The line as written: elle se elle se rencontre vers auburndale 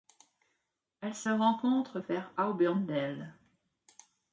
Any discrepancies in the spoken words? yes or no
yes